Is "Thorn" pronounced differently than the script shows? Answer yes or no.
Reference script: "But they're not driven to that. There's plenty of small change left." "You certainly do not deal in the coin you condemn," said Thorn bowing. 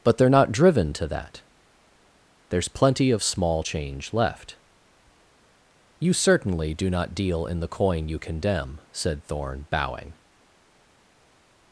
no